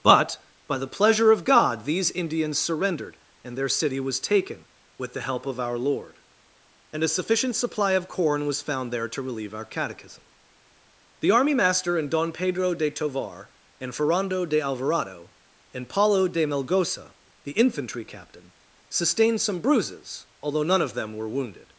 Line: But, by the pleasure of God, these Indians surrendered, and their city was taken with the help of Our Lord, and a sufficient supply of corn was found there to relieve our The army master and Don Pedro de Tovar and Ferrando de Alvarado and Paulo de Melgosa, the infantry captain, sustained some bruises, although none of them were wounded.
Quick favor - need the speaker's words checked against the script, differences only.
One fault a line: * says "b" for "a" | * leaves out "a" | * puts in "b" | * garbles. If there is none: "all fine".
* puts in "catechism"